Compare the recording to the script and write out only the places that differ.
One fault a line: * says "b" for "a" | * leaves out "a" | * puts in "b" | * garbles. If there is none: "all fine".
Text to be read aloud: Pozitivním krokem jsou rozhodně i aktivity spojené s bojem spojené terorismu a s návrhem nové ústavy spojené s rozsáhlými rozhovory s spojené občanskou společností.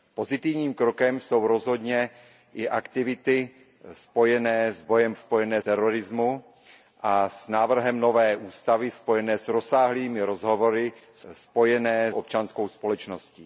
all fine